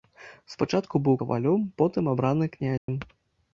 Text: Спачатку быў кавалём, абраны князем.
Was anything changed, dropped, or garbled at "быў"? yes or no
no